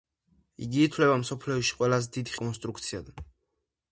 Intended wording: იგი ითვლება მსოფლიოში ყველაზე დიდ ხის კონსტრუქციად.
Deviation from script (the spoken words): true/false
true